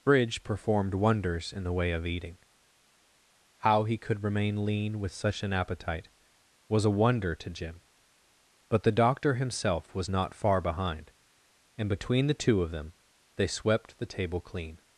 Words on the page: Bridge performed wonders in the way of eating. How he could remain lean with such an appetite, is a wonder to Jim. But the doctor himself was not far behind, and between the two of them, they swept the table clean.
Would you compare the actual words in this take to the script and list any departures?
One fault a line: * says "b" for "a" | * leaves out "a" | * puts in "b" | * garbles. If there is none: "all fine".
* says "was" for "is"